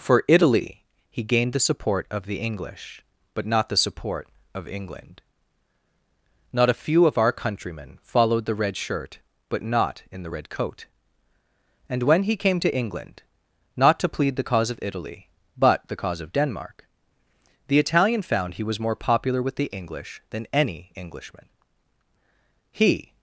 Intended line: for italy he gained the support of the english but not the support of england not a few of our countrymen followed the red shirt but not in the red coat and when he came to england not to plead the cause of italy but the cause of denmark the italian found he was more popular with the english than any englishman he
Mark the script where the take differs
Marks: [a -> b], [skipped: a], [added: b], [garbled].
for italy he gained the support of the english but not the support of england not a few of our countrymen followed the red shirt but not in the red coat and when he came to england not to plead the cause of italy but the cause of denmark the italian found he was more popular with the english than any englishman he